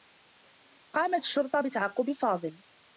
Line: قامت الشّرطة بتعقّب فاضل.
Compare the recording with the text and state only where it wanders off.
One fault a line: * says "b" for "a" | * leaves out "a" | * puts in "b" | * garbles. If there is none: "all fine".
all fine